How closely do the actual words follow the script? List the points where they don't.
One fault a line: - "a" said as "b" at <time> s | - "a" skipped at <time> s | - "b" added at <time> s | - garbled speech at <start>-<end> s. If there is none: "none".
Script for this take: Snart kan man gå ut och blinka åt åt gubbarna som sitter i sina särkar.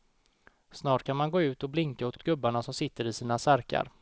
none